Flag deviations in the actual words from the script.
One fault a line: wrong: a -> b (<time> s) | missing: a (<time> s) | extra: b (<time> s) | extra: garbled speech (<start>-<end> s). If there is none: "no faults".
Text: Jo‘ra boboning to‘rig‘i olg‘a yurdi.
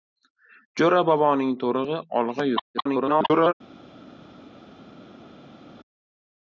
extra: garbled speech (2.7-3.5 s)